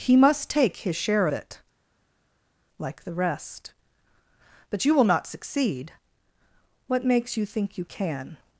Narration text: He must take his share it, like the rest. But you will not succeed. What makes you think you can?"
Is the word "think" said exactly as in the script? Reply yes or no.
yes